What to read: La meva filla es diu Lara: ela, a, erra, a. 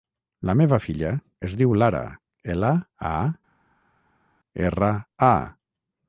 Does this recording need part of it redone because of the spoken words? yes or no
no